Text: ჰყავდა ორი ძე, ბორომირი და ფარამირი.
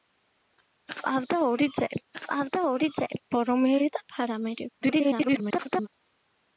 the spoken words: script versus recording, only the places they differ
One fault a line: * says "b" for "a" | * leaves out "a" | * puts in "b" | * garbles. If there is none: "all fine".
* puts in "ჰყავდა ორი ძე"
* garbles